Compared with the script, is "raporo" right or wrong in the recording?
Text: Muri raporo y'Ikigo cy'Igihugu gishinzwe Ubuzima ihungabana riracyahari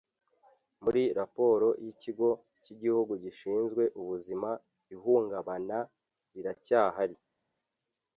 right